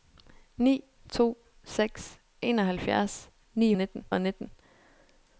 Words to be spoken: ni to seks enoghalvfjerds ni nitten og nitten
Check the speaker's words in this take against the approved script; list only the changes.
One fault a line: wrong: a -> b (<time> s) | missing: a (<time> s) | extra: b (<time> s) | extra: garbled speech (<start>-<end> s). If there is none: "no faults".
no faults